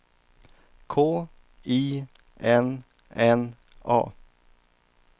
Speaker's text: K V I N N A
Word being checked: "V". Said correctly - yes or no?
no